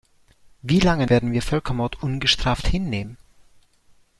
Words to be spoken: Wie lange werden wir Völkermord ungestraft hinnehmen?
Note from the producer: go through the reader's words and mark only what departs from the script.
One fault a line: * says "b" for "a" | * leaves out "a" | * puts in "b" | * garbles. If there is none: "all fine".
all fine